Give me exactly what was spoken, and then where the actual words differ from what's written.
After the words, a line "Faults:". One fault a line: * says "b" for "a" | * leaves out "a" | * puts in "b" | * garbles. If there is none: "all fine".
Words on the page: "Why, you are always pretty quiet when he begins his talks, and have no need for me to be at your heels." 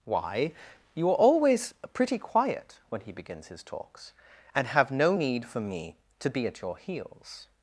"Why, you are always pretty quiet when he begins his talks, and have no need for me to be at your heels."
Faults:
all fine